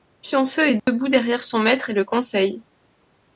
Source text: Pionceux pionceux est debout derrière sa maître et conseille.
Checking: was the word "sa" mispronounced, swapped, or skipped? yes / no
yes